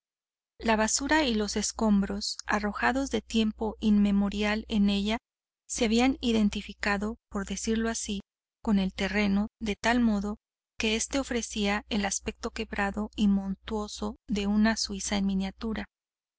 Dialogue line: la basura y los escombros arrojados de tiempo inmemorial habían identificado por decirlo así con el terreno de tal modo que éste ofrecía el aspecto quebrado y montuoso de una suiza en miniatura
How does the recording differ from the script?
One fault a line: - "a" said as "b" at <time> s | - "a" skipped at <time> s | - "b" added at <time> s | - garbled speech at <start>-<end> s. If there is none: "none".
- "en ella se" added at 4.7 s